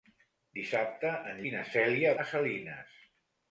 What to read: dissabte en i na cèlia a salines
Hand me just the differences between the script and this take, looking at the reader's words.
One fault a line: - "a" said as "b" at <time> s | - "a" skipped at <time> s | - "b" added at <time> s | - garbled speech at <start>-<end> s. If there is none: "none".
none